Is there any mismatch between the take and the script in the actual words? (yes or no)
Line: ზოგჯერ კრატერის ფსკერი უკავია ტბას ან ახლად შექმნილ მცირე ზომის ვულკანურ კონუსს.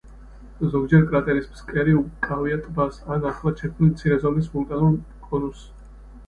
no